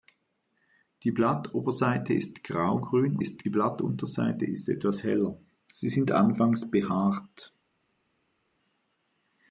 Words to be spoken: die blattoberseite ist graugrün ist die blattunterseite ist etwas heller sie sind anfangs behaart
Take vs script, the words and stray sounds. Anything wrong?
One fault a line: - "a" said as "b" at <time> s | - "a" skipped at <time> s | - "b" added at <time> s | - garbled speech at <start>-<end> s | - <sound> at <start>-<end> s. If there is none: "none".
none